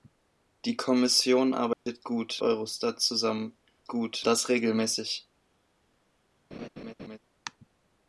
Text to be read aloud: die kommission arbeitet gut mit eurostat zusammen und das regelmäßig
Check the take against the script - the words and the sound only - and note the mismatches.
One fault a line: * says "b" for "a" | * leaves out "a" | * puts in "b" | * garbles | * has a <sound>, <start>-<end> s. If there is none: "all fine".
* has a dropout, 1.7-1.9 s
* leaves out "mit"
* says "gut" for "und"
* has a laugh, 6.5-7.2 s